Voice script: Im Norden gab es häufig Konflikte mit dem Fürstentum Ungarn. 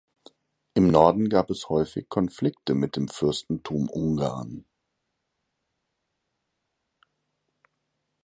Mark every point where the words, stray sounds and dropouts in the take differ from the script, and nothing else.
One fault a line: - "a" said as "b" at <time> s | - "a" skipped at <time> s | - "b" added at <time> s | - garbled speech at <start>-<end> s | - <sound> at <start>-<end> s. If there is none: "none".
none